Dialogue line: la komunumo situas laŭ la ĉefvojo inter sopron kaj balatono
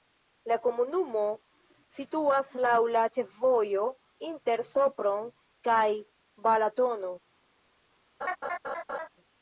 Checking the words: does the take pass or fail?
pass